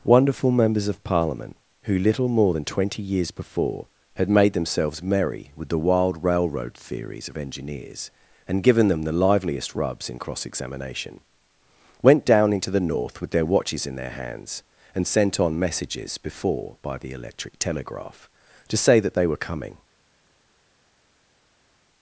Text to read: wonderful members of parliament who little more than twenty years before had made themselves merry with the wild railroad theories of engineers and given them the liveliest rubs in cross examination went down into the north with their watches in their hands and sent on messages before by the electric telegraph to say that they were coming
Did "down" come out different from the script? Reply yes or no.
no